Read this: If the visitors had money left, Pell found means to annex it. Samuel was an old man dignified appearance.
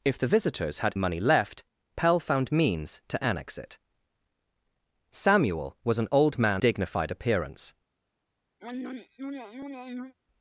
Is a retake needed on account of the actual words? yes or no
no